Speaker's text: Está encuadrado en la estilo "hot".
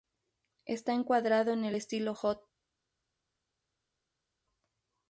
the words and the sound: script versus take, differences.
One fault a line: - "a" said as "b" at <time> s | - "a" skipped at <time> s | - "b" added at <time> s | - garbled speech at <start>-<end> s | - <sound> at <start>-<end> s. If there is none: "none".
- "la" said as "el" at 1.6 s